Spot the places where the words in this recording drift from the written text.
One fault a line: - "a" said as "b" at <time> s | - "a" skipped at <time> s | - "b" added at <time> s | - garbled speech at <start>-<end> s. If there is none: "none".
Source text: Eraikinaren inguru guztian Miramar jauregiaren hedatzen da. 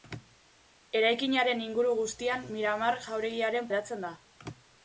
none